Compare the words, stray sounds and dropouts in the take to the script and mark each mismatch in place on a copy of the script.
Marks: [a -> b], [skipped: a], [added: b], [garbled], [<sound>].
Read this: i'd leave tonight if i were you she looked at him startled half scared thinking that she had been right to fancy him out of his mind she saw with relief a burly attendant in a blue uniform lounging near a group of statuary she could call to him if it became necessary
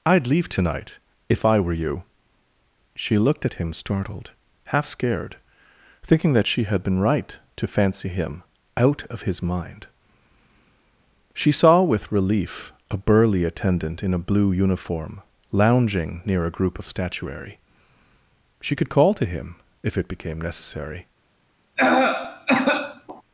i'd leave tonight if i were you she looked at him startled half scared thinking that she had been right to fancy him out of his mind she saw with relief a burly attendant in a blue uniform lounging near a group of statuary she could call to him if it became necessary [cough]